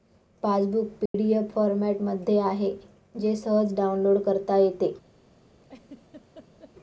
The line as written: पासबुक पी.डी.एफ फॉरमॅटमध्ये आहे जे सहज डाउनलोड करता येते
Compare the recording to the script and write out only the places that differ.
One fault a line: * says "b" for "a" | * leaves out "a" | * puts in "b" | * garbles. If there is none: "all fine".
all fine